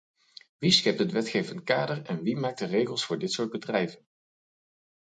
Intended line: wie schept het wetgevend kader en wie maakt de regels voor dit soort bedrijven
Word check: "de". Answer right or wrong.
right